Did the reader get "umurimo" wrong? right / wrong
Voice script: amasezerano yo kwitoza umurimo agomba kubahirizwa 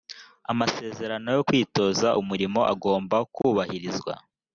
right